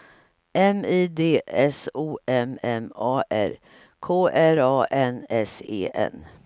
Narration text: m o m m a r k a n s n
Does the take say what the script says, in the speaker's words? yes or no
no